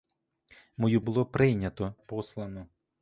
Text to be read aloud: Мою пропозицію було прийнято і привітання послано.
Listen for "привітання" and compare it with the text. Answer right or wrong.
wrong